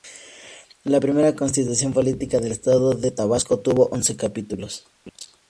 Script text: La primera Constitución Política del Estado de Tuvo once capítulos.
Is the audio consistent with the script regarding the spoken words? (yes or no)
no